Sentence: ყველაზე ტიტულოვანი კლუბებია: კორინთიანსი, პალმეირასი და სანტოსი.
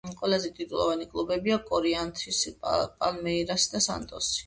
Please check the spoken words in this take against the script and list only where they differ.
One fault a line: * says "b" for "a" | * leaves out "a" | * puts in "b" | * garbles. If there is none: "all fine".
all fine